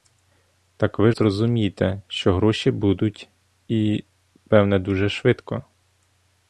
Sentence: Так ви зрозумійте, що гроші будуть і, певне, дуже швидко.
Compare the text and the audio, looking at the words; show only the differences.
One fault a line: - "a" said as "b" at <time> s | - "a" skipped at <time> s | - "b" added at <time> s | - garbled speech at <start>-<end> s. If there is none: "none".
none